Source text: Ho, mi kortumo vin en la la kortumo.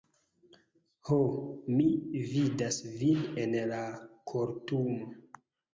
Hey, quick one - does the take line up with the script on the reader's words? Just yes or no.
no